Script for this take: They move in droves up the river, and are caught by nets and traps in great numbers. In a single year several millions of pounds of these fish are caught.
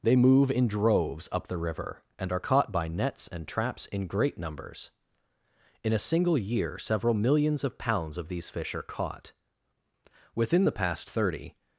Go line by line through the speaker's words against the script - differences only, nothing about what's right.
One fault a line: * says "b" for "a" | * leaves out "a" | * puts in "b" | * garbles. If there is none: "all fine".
* puts in "Within the past thirty"